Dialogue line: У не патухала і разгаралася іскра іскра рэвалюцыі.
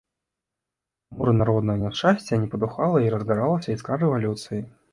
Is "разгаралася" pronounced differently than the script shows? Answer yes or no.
no